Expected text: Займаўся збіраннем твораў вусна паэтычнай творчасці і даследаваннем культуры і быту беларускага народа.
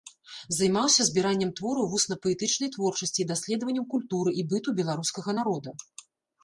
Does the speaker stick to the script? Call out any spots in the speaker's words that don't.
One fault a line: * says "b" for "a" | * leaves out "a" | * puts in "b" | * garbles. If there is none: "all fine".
all fine